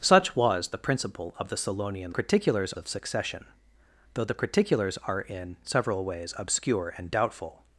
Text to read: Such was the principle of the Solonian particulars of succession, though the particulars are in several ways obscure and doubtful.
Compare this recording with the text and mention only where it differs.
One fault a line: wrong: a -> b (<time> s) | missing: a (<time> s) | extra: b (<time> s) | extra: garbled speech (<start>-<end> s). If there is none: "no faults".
no faults